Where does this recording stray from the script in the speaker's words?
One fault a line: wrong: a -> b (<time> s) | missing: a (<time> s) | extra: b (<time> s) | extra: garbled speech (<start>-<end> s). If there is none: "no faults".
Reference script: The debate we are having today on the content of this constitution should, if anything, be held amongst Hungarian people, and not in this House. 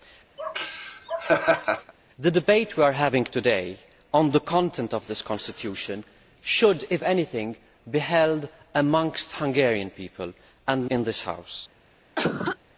missing: not (10.9 s)